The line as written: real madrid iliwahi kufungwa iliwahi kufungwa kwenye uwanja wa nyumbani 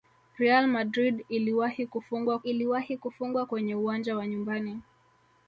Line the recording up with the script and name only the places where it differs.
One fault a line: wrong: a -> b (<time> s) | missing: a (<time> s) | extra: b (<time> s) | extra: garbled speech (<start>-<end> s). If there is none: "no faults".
no faults